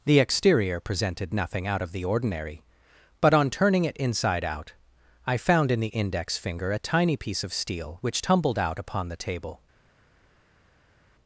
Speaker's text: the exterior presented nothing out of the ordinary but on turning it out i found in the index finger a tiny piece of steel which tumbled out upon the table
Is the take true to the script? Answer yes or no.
no